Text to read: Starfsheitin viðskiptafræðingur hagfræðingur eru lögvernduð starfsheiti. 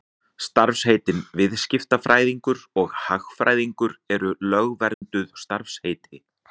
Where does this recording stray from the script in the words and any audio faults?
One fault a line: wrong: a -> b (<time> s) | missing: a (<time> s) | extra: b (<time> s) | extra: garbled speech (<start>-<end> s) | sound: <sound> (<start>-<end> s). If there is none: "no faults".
extra: og (2.8 s)
sound: dropout (4.9-5.0 s)